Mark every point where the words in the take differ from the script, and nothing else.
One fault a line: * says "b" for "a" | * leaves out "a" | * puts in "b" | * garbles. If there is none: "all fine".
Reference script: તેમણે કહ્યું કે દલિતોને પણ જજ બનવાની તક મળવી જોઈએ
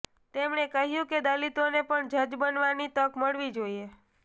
all fine